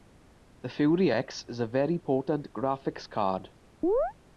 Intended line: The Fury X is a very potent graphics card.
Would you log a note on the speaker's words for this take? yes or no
no